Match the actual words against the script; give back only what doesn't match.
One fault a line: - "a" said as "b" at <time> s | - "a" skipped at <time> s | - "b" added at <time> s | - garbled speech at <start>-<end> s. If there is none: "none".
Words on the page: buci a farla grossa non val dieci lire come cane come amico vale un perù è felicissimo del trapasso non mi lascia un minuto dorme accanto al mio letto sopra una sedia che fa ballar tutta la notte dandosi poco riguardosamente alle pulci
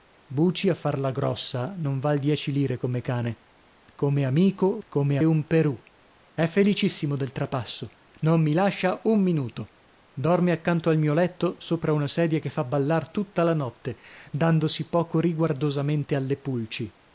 - "vale" said as "come" at 4.9 s